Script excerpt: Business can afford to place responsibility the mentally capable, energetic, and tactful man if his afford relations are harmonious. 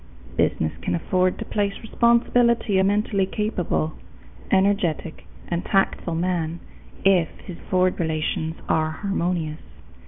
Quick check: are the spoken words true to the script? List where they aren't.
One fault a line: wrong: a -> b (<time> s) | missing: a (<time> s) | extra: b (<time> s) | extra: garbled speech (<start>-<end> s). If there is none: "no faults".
no faults